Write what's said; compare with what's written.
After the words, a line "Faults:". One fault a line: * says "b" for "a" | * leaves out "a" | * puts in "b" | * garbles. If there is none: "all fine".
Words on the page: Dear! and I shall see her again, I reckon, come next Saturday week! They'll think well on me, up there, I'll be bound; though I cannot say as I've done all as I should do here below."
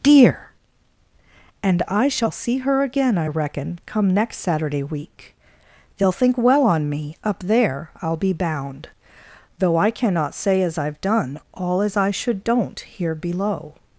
Dear! and I shall see her again, I reckon, come next Saturday week! They'll think well on me, up there, I'll be bound; though I cannot say as I've done all as I should don't here below."
Faults:
* says "don't" for "do"